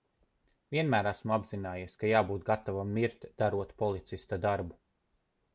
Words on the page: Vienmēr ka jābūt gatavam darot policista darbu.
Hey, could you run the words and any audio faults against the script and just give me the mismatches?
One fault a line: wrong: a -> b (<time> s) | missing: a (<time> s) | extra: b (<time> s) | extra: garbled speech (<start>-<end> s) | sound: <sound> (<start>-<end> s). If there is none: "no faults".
extra: esmu apzinājies (1.1 s)
extra: mirt (3.0 s)